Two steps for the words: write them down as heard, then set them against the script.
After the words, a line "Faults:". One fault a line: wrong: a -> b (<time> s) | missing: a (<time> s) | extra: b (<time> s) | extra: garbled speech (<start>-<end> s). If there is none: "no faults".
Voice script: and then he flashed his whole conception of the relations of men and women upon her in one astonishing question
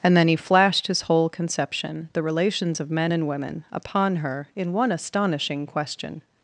and then he flashed his whole conception the relations of men and women upon her in one astonishing question
Faults:
missing: of (2.1 s)